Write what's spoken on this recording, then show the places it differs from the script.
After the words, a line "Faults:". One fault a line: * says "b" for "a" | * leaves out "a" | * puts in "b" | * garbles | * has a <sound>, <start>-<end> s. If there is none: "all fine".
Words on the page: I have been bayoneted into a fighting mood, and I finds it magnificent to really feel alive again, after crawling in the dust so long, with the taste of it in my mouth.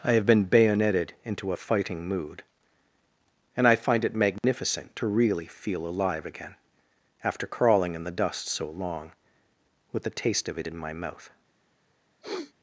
I have been bayoneted into a fighting mood, and I find it magnificent to really feel alive again, after crawling in the dust so long, with the taste of it in my mouth.
Faults:
* says "find" for "finds"
* has a dropout, 4.4-4.4 s
* has a sniff, 12.2-12.5 s